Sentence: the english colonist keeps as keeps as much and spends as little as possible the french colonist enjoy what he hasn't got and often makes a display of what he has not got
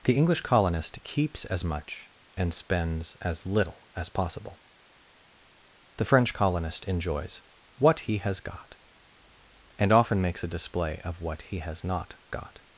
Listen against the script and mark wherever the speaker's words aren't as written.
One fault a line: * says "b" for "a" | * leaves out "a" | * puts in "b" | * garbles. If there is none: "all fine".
* leaves out "keeps as"
* says "enjoys" for "enjoy"
* says "has" for "hasn't"